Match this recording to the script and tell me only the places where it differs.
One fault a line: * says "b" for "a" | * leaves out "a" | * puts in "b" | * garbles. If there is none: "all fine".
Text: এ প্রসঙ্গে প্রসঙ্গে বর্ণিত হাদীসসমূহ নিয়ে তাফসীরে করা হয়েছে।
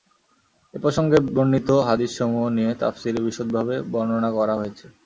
* leaves out "প্রসঙ্গে"
* puts in "বিশদভাবে বর্ণনা"